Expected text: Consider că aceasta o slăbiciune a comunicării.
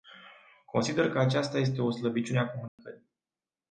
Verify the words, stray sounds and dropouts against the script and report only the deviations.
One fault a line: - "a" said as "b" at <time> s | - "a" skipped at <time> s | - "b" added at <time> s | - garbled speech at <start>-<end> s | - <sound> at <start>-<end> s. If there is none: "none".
- "este" added at 1.6 s
- dropout at 2.7-2.8 s